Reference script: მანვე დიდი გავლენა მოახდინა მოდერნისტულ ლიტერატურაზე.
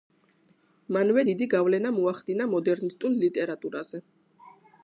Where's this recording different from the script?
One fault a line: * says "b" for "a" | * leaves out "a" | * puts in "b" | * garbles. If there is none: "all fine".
all fine